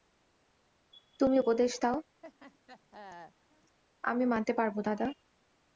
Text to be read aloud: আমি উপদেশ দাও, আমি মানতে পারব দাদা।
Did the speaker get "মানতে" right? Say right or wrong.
right